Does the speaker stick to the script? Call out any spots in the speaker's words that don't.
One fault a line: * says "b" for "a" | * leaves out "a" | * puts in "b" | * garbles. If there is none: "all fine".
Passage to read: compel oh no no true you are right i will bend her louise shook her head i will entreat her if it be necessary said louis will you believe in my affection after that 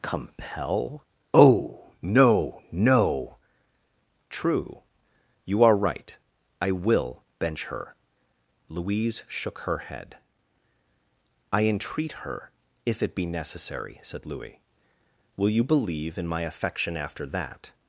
* says "bench" for "bend"
* leaves out "will"